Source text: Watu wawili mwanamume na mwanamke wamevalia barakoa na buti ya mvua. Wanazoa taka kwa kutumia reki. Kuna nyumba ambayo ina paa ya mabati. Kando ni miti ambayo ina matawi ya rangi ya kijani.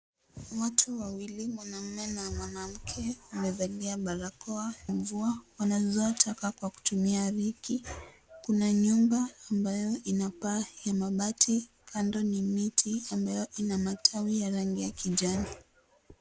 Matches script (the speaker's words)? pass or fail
fail